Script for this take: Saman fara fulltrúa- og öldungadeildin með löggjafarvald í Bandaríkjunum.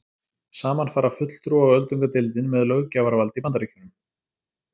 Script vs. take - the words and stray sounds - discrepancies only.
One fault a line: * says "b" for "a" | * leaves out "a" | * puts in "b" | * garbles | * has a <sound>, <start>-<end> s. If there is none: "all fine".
all fine